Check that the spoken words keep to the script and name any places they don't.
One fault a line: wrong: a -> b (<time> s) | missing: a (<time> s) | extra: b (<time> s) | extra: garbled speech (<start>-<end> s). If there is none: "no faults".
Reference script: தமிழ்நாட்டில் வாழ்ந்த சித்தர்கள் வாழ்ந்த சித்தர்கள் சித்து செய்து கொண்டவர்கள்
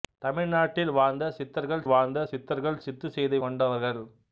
no faults